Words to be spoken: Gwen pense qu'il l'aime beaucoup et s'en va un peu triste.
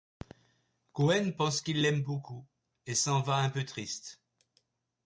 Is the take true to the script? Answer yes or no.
yes